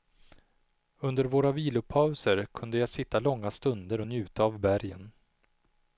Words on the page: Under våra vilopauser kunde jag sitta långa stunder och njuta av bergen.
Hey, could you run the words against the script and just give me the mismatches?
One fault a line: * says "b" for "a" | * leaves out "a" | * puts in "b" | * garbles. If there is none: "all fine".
all fine